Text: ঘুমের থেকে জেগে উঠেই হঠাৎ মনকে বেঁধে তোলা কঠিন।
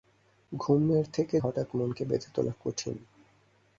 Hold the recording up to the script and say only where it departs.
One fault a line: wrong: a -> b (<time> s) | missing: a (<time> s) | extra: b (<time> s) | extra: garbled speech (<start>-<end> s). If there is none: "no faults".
missing: জেগে উঠেই (1.4 s)